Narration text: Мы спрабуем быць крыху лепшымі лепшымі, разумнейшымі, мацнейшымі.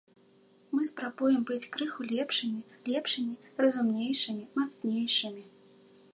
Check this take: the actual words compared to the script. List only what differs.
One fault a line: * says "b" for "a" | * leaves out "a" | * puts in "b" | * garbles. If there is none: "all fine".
all fine